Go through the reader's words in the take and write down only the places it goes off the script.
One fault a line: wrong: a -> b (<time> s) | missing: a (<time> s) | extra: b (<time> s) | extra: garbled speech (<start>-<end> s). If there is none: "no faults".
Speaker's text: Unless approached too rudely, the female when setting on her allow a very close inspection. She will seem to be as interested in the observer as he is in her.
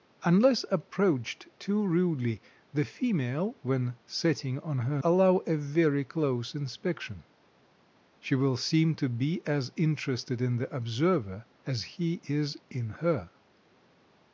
no faults